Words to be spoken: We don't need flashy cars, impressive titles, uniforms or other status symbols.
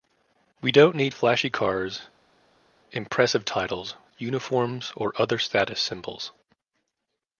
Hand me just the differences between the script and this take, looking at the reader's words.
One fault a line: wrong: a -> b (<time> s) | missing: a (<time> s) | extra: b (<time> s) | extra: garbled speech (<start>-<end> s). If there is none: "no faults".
no faults